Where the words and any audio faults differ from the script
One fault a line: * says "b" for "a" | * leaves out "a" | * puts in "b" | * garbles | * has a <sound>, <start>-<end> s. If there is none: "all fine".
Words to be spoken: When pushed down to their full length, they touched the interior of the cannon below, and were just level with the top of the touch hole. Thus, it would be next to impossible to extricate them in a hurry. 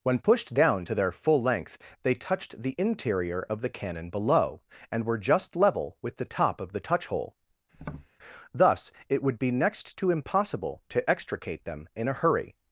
* has a tap, 7.7-8.1 s